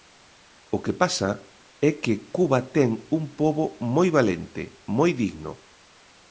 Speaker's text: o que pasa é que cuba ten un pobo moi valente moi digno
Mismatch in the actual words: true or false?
false